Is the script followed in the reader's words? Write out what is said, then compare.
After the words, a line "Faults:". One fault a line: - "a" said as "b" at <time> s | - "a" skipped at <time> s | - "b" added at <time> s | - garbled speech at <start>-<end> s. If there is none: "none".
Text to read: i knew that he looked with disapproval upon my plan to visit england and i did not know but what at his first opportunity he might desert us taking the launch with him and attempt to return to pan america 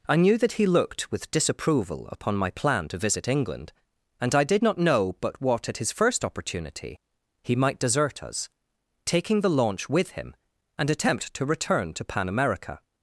i knew that he looked with disapproval upon my plan to visit england and i did not know but what at his first opportunity he might desert us taking the launch with him and attempt to return to pan america
Faults:
none